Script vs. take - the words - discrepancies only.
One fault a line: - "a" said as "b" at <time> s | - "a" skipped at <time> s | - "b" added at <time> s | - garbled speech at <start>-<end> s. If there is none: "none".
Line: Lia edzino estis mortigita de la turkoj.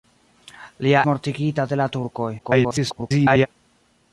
- "edzino estis" skipped at 1.0 s
- garbled speech at 2.4-3.5 s